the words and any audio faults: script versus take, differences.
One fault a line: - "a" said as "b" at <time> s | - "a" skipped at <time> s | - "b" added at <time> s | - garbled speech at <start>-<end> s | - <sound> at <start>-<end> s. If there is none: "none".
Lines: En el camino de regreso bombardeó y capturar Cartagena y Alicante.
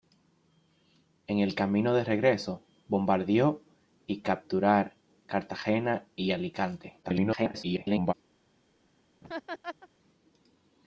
- garbled speech at 7.0-8.1 s
- laugh at 9.2-9.9 s